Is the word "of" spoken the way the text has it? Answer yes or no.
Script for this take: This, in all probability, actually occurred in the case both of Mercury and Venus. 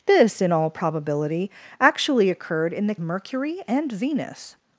no